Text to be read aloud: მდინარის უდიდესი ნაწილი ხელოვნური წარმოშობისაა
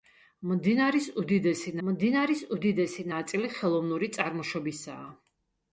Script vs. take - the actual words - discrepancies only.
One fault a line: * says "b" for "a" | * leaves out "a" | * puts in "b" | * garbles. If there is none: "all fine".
* puts in "მდინარის უდიდესი"